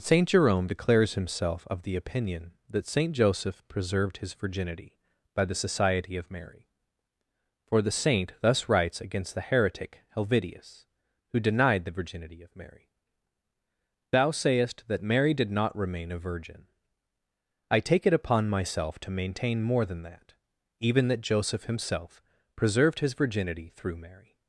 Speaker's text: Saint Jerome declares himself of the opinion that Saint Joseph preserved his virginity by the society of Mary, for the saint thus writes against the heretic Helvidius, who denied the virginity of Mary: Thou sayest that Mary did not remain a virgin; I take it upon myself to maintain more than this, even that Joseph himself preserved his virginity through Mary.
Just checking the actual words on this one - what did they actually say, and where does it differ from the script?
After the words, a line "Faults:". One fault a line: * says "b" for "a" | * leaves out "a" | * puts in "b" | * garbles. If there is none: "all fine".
Saint Jerome declares himself of the opinion that Saint Joseph preserved his virginity by the society of Mary, for the saint thus writes against the heretic Helvidius, who denied the virginity of Mary: Thou sayest that Mary did not remain a virgin; I take it upon myself to maintain more than that, even that Joseph himself preserved his virginity through Mary.
Faults:
* says "that" for "this"